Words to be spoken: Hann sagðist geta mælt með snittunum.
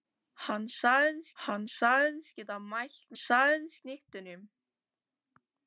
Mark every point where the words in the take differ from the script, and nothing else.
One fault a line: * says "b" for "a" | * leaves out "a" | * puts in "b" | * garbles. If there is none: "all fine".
* puts in "hann sagðist"
* says "sagðist" for "með"